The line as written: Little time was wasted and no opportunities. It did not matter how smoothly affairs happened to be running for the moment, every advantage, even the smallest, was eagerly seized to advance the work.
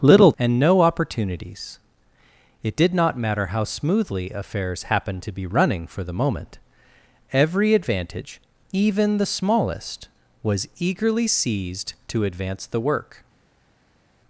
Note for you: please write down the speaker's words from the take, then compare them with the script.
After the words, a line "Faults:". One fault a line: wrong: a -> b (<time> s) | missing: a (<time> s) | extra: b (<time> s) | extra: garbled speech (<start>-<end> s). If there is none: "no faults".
Little and no opportunities. It did not matter how smoothly affairs happened to be running for the moment, every advantage, even the smallest, was eagerly seized to advance the work.
Faults:
missing: time was wasted (0.3 s)